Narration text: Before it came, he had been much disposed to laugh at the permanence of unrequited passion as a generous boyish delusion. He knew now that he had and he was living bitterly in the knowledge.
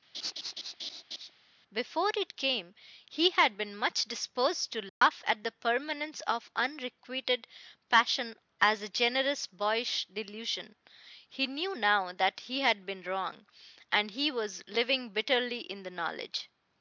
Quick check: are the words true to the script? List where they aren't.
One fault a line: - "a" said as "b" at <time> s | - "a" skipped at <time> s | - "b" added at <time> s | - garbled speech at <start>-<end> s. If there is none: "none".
- "been wrong" added at 12.9 s